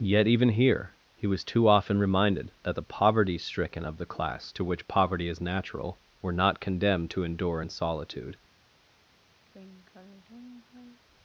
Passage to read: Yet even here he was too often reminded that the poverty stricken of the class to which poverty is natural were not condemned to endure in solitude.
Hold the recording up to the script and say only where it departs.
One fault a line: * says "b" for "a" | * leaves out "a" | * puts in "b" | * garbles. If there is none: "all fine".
all fine